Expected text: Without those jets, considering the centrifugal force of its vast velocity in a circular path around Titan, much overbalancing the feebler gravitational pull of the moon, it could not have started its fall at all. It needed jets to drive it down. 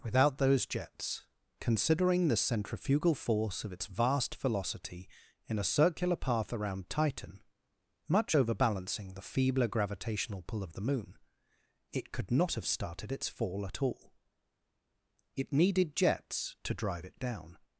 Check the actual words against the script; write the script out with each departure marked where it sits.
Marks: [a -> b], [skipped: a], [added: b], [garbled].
Without those jets, considering the centrifugal force of its vast velocity in a circular path around Titan, much overbalancing the feebler gravitational pull of the moon, it could not have started its fall at all. It needed jets to drive it down.